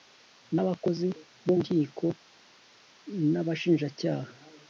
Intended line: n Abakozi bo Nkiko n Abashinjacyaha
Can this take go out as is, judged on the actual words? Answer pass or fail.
pass